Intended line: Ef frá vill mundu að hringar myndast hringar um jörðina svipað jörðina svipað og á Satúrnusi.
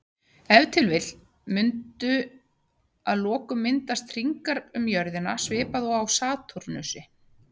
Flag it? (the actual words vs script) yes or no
yes